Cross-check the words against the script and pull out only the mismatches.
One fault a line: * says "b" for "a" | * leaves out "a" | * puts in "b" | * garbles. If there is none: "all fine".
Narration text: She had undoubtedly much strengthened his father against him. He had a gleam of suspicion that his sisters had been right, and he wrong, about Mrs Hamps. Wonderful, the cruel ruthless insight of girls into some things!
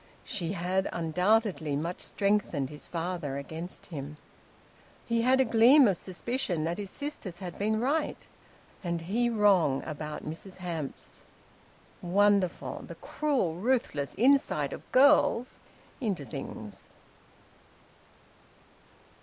* leaves out "some"